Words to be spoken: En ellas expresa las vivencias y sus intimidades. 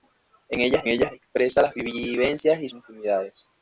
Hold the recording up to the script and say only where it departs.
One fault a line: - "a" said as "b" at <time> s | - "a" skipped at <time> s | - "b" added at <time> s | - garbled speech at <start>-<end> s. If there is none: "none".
- "ellas" added at 0.9 s
- "sus" skipped at 2.7 s